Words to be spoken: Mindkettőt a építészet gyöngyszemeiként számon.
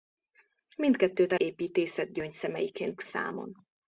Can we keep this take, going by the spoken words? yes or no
yes